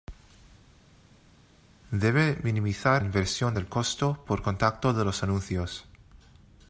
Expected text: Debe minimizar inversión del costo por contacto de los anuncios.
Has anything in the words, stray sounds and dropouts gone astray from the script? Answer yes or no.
no